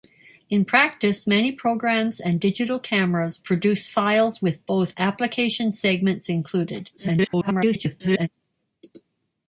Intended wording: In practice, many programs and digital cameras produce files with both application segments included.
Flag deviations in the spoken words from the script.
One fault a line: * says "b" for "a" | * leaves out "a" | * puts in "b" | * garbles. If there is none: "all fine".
* garbles